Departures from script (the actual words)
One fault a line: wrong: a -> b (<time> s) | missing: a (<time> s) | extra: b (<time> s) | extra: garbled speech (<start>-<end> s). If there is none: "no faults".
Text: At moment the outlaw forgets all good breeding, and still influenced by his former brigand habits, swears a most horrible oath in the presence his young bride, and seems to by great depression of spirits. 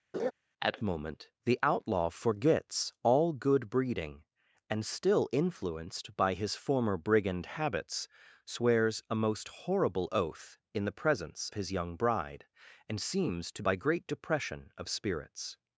no faults